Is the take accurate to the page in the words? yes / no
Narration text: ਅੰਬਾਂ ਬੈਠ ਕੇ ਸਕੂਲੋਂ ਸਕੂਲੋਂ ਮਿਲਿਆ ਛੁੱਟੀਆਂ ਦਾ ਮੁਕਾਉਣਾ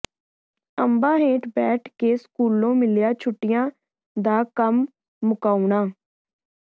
no